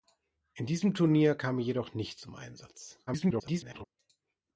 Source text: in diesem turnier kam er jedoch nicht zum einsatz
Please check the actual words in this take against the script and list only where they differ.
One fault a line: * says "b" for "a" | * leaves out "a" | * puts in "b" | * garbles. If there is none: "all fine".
* garbles